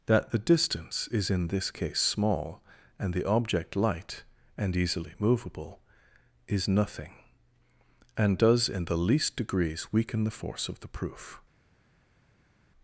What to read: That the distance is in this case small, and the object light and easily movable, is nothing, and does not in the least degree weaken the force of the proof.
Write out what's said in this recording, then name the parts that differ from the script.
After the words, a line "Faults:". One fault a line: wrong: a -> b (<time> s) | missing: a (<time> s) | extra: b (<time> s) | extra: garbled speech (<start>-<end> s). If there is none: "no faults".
That the distance is in this case small, and the object light and easily movable, is nothing, and does in the least degrees weaken the force of the proof.
Faults:
missing: not (8.7 s)
wrong: degree -> degrees (9.4 s)